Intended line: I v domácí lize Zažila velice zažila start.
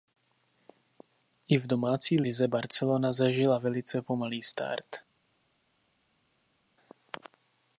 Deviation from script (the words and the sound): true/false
true